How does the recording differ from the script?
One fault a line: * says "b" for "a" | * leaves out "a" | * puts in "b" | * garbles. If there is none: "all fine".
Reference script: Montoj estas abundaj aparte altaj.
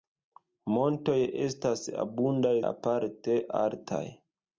all fine